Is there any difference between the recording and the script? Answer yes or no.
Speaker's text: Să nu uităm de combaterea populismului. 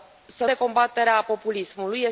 yes